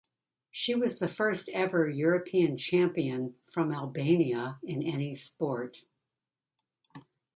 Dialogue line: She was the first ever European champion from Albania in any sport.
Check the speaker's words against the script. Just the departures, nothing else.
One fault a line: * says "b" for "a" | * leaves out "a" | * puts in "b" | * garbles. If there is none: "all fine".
all fine